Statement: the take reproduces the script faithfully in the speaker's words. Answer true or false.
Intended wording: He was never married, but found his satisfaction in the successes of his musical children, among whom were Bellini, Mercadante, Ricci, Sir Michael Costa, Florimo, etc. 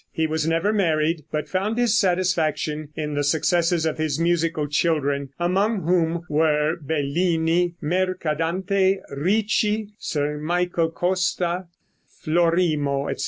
true